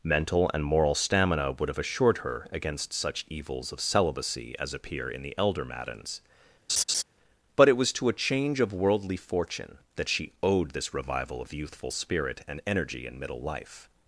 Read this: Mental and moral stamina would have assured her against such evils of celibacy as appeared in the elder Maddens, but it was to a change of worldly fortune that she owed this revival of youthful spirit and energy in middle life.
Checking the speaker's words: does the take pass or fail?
fail